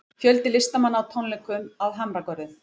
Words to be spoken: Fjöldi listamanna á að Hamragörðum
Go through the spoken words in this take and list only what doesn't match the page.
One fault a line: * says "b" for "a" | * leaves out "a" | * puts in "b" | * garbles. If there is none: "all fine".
* puts in "tónleikum"